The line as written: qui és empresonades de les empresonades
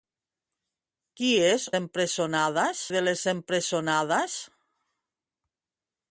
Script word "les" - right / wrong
right